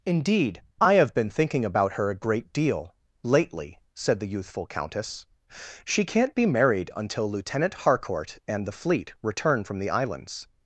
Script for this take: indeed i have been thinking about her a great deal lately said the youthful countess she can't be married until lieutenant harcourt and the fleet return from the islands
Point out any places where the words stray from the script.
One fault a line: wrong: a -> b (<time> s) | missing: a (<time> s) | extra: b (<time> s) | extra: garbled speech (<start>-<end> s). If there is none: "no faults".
no faults